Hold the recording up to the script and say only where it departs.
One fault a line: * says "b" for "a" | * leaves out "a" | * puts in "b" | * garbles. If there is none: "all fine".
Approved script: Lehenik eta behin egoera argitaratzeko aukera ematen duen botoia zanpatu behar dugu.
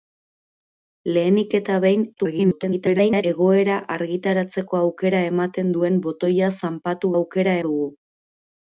* garbles
* says "aukera" for "behar"